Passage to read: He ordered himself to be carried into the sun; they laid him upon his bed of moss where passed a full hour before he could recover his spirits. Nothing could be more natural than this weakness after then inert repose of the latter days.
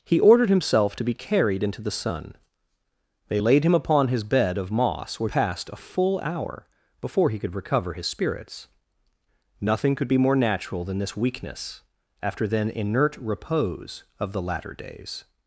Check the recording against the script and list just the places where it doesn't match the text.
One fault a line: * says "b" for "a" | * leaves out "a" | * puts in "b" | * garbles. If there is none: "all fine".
all fine